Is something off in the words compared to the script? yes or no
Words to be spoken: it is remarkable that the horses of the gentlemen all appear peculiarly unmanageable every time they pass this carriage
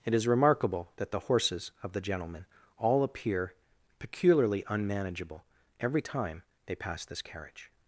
no